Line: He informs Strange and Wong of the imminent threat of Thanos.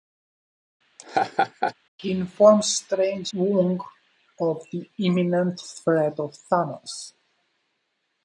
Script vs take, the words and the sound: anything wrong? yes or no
yes